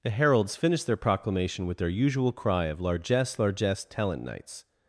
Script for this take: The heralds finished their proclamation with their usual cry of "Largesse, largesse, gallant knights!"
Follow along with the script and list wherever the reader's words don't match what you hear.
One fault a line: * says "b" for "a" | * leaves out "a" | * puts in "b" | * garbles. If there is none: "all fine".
* says "talent" for "gallant"